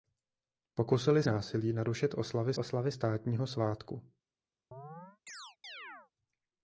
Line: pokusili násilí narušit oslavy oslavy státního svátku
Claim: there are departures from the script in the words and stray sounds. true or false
true